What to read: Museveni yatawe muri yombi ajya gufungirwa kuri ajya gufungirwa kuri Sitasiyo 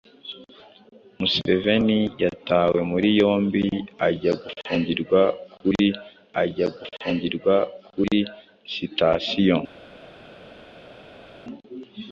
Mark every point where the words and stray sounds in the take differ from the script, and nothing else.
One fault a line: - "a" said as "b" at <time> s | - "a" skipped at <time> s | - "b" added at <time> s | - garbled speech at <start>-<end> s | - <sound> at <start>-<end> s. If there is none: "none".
none